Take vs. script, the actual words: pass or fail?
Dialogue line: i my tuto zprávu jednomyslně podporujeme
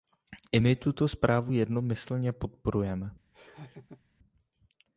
pass